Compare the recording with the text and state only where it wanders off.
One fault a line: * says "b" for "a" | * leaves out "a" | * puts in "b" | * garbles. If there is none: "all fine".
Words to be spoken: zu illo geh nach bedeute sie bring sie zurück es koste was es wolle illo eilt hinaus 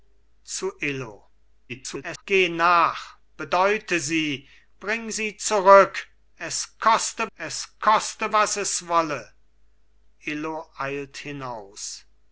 * garbles
* puts in "es koste"